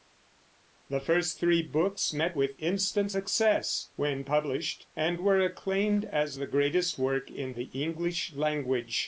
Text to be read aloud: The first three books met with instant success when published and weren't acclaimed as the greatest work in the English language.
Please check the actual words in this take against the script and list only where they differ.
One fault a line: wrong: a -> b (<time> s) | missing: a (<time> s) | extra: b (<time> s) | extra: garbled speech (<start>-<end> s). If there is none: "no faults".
wrong: weren't -> were (5.2 s)